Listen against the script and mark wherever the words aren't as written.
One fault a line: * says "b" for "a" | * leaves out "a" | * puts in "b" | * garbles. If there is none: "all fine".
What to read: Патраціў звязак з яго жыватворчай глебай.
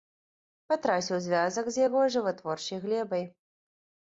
all fine